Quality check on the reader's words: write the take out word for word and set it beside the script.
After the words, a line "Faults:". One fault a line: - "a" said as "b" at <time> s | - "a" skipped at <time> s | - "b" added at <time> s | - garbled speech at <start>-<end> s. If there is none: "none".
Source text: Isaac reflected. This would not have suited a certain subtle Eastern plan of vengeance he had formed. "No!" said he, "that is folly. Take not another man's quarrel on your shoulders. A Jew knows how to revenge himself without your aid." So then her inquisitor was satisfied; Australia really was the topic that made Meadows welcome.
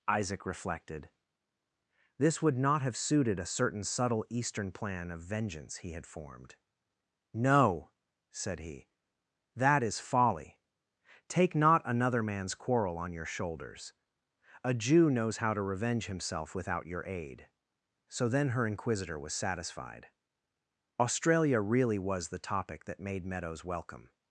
Isaac reflected. This would not have suited a certain subtle Eastern plan of vengeance he had formed. "No!" said he, "that is folly. Take not another man's quarrel on your shoulders. A Jew knows how to revenge himself without your aid." So then her inquisitor was satisfied; Australia really was the topic that made Meadows welcome.
Faults:
none